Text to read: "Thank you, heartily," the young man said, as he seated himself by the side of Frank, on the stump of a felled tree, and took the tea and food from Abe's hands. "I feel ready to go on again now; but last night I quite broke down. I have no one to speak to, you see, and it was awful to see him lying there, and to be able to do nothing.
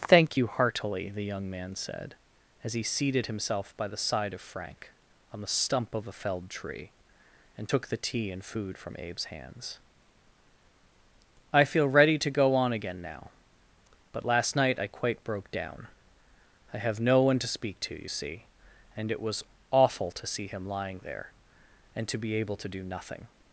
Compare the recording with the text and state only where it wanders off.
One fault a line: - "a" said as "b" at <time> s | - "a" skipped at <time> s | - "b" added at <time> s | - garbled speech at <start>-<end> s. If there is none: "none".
none